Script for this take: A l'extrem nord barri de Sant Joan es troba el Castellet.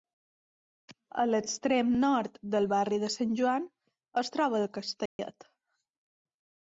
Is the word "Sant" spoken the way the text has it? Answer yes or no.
yes